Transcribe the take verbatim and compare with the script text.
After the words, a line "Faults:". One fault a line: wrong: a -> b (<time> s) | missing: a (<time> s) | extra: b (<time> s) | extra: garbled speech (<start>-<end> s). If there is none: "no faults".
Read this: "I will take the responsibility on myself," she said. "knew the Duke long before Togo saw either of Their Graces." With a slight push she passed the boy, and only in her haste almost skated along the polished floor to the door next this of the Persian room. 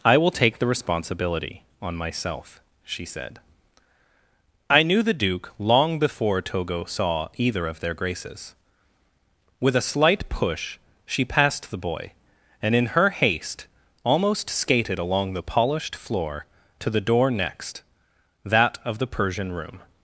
"I will take the responsibility on myself," she said. "I knew the Duke long before Togo saw either of Their Graces." With a slight push she passed the boy, and in her haste almost skated along the polished floor to the door next that of the Persian room.
Faults:
extra: I (4.7 s)
missing: only (12.7 s)
wrong: this -> that (18.4 s)